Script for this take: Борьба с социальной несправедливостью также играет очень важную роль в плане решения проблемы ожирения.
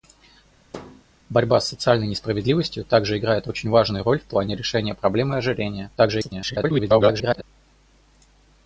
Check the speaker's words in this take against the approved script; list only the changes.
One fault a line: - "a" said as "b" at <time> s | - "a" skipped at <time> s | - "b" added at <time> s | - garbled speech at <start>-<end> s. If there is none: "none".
- garbled speech at 6.0-7.4 s